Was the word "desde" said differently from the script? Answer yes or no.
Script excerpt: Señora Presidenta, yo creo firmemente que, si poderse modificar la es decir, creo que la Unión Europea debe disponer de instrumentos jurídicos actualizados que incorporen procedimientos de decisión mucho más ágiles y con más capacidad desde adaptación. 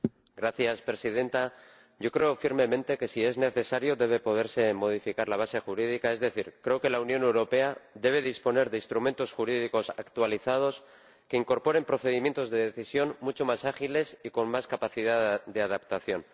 yes